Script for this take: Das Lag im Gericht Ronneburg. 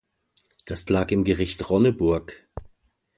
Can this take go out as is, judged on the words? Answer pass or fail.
pass